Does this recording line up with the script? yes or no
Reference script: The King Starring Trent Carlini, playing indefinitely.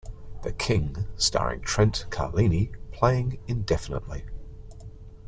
yes